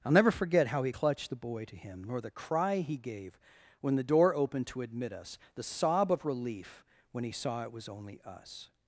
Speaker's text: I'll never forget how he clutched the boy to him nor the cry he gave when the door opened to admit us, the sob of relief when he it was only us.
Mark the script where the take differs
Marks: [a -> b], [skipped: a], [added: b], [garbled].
I'll never forget how he clutched the boy to him nor the cry he gave when the door opened to admit us, the sob of relief when he [added: saw] it was only us.